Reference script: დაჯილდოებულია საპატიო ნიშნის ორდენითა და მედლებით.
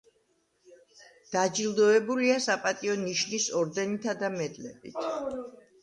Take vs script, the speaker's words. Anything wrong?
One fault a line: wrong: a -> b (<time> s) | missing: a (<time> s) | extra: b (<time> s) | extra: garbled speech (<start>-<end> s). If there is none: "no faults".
no faults